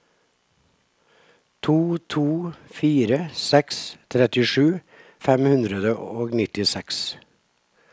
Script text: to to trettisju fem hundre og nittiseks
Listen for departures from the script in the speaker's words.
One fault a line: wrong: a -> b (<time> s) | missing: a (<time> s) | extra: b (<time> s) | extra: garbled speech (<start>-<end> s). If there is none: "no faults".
extra: fire seks (2.8 s)